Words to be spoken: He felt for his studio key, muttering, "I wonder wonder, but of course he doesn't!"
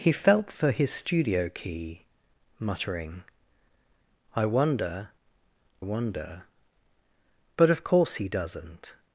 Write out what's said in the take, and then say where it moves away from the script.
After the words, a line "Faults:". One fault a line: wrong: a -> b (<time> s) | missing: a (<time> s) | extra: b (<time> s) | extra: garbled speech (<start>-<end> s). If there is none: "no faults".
He felt for his studio key, muttering, "I wonder wonder, but of course he doesn't!"
Faults:
no faults